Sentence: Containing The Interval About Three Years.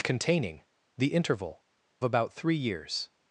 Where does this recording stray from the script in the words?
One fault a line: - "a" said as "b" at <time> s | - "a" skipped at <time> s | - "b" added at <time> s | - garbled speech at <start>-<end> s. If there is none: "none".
none